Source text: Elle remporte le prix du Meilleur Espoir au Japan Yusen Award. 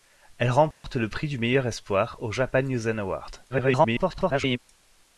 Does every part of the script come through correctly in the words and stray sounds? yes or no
no